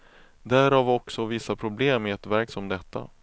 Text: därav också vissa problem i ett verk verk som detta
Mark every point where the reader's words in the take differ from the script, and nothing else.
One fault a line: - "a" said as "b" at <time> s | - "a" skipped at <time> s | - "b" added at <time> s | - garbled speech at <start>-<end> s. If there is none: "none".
- "verk" skipped at 2.5 s